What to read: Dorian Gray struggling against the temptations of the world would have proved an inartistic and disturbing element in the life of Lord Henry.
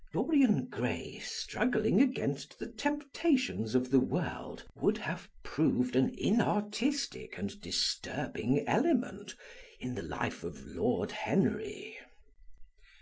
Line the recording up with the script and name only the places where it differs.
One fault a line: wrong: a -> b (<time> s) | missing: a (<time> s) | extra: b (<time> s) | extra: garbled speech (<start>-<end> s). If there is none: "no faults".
no faults